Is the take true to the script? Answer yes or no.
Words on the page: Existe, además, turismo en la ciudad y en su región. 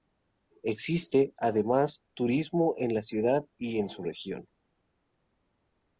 yes